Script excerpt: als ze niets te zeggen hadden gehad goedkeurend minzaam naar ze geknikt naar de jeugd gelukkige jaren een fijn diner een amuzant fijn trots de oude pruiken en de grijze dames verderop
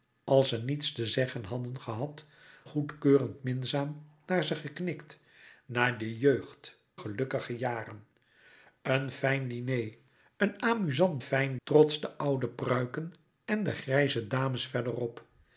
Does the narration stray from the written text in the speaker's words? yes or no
no